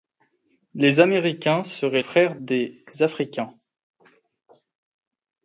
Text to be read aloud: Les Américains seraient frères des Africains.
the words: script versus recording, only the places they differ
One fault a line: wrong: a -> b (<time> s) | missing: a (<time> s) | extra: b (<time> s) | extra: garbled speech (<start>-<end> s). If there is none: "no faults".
no faults